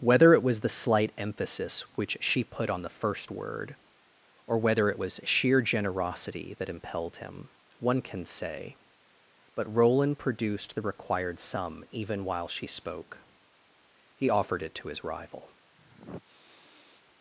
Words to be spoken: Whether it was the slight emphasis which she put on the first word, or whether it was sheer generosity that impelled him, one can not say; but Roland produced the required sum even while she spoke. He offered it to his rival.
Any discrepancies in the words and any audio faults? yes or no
yes